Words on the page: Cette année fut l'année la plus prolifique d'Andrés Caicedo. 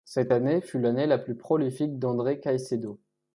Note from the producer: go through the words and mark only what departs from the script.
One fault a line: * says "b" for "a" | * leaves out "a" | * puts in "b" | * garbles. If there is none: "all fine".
all fine